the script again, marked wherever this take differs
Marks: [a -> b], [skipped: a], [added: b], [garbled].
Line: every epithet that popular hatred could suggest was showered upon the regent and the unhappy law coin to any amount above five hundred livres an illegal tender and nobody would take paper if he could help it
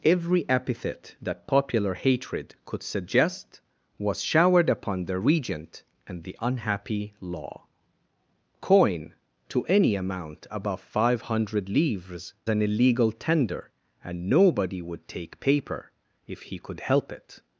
every epithet that popular hatred could suggest was showered upon the regent and the unhappy law coin to any amount above five hundred livres an illegal tender and nobody would take paper if he could help it